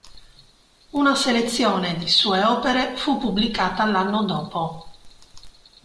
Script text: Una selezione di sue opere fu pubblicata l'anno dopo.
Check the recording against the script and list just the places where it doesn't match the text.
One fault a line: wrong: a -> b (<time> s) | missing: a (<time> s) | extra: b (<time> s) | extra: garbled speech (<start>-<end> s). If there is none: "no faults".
no faults